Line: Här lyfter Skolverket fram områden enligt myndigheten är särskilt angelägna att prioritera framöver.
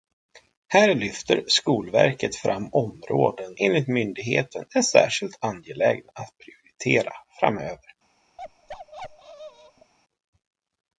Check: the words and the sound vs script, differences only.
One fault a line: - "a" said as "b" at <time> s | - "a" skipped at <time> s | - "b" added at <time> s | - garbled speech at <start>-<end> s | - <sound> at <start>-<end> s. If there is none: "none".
- bark at 8.4-9.9 s